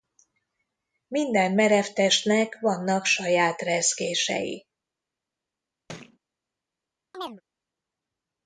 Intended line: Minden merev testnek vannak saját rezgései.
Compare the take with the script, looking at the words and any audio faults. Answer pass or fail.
fail